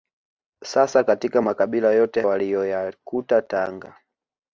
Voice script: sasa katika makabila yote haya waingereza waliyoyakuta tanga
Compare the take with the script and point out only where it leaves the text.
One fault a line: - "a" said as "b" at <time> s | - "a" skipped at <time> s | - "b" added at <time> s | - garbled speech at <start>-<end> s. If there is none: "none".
- "haya waingereza" skipped at 2.2 s